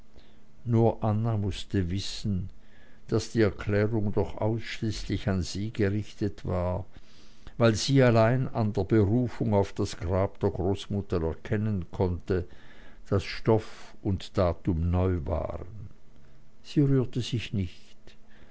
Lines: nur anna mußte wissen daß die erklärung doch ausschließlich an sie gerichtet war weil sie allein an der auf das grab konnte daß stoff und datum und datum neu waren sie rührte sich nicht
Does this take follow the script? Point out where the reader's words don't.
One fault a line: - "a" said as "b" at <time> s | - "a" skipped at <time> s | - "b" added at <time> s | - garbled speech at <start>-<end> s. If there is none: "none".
- "berufung" added at 8.9 s
- "der großmutter erkennen" added at 10.4 s
- "und datum" skipped at 14.9 s